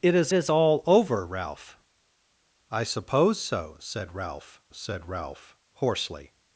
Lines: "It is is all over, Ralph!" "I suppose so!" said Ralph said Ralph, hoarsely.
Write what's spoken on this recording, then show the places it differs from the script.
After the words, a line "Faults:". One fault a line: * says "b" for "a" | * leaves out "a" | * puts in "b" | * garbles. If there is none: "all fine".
"It is is all over, Ralph!" "I suppose so!" said Ralph said Ralph, hoarsely.
Faults:
all fine